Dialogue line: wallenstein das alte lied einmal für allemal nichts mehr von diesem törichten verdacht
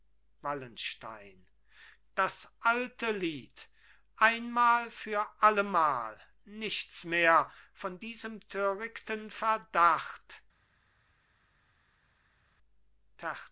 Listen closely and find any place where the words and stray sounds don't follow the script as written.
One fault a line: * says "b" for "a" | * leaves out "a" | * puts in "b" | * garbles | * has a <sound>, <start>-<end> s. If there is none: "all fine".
all fine